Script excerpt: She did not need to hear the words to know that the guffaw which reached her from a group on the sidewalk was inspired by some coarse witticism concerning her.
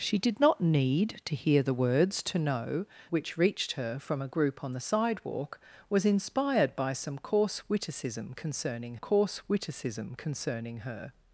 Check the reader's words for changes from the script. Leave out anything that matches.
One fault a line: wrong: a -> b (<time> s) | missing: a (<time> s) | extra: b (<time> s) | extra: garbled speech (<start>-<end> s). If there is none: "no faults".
missing: that the guffaw (2.9 s)
extra: coarse witticism concerning (8.9 s)